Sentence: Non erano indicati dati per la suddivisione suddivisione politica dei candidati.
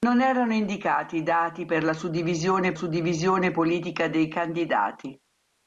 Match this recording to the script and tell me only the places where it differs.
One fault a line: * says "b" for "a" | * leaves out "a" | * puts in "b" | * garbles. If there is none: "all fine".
all fine